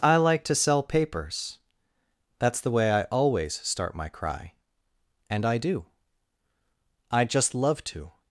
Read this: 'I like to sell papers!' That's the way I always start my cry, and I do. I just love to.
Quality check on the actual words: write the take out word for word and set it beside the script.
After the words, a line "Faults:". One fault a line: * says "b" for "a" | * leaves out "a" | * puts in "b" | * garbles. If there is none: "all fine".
'I like to sell papers!' That's the way I always start my cry, and I do. I just love to.
Faults:
all fine